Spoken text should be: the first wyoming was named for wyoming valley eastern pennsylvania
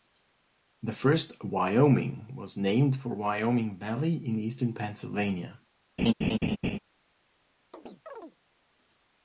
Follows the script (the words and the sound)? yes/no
no